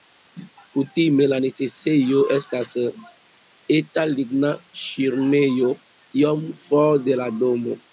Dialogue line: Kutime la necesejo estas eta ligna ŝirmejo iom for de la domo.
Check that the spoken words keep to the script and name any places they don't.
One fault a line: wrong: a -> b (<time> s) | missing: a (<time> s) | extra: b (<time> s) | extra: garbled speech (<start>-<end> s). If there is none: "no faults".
no faults